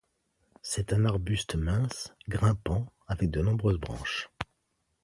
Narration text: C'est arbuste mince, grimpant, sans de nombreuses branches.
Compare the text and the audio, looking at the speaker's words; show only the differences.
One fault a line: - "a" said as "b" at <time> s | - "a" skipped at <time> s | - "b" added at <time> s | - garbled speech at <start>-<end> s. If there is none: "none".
- "un" added at 0.9 s
- "sans" said as "avec" at 3.0 s